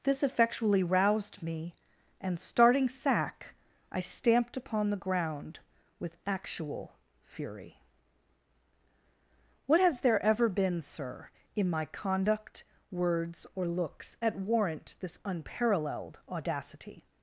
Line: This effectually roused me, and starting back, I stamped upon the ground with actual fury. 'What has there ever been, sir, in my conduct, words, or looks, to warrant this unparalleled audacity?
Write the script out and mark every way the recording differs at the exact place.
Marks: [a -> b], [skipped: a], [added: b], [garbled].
This effectually roused me, and starting [back, -> sack] I stamped upon the ground with actual fury. 'What has there ever been, sir, in my conduct, words, or looks, [to -> at] warrant this unparalleled audacity?